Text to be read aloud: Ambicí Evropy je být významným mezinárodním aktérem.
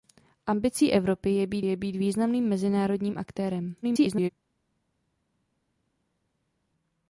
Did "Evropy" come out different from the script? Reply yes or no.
no